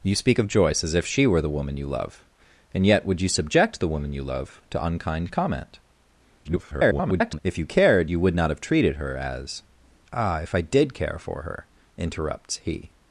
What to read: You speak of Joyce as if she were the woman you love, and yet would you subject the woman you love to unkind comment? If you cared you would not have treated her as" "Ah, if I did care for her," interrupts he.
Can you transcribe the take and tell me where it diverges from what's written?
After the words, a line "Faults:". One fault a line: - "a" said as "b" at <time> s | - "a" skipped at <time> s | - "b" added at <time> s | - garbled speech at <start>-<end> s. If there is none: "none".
You speak of Joyce as if she were the woman you love, and yet would you subject the woman you love to unkind comment? [garbled] If you cared you would not have treated her as" "Ah, if I did care for her," interrupts he.
Faults:
- garbled speech at 6.4-7.4 s